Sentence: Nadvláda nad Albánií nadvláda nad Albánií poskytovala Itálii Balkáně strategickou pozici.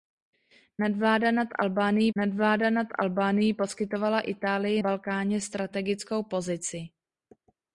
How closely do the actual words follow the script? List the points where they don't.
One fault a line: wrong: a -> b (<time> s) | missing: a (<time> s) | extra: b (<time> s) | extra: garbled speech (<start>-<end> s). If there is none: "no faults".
no faults